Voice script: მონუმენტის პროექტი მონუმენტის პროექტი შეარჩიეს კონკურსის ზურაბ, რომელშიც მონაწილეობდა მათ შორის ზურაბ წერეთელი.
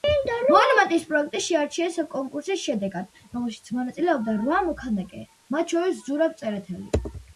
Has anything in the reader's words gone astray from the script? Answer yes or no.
yes